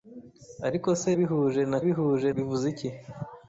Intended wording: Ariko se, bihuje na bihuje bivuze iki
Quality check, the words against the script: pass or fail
pass